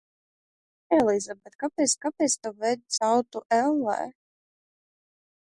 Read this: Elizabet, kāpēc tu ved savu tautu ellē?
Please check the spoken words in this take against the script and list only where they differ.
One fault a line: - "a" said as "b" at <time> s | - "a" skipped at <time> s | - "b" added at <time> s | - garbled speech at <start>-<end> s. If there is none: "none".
- "kāpēc" added at 2.1 s
- "savu" skipped at 2.8 s